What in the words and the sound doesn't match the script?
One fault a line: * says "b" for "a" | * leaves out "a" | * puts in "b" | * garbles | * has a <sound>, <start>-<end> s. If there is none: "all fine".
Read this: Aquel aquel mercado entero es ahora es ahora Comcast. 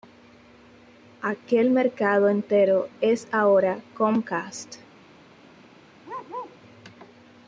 * leaves out "aquel"
* leaves out "es ahora"
* has a bark, 6.0-6.6 s